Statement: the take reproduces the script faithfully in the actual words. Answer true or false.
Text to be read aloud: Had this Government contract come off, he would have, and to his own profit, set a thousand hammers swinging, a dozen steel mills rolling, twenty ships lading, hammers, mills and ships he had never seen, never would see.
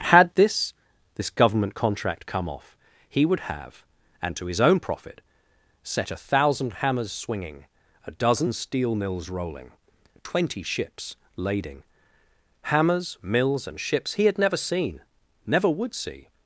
false